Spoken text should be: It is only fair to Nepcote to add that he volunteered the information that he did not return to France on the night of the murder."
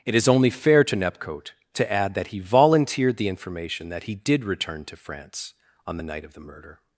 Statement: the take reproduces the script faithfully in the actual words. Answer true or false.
false